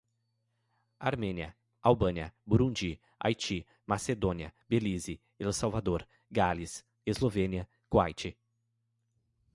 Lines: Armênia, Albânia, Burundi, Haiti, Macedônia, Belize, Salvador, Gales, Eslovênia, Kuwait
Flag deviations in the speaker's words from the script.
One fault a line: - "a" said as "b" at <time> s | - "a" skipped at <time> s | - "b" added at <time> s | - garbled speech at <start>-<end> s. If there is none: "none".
- "El" added at 5.4 s